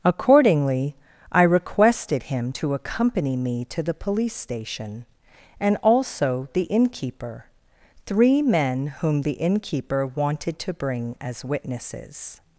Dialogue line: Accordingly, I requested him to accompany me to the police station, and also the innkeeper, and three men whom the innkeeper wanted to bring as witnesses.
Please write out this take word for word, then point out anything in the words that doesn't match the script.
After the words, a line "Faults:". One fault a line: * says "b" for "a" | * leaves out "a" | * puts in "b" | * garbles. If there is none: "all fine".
Accordingly, I requested him to accompany me to the police station, and also the innkeeper, three men whom the innkeeper wanted to bring as witnesses.
Faults:
* leaves out "and"